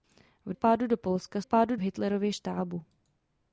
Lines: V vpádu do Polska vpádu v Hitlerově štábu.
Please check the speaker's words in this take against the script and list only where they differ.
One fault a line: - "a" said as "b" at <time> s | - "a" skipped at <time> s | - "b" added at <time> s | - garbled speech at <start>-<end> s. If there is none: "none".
none